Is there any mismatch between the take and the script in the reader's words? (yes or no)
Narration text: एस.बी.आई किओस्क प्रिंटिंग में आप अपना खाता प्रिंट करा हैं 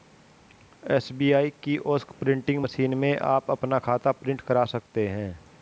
yes